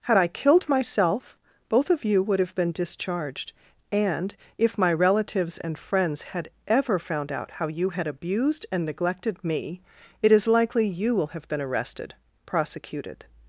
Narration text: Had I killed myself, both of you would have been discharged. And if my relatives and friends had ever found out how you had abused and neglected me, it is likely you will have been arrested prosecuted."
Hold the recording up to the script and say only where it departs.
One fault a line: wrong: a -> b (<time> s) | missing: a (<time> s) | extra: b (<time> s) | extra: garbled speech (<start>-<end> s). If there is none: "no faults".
no faults